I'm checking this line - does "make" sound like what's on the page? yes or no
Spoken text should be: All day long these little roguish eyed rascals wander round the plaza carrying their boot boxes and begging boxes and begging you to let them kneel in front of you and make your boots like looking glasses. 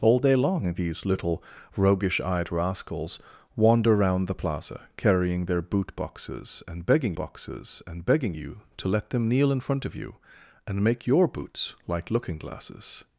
yes